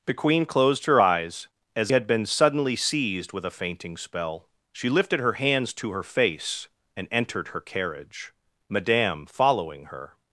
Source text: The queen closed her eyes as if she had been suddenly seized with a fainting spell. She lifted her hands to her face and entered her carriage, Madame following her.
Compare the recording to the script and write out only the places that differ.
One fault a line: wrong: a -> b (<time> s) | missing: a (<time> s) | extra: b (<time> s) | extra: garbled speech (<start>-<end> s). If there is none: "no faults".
missing: if she (1.9 s)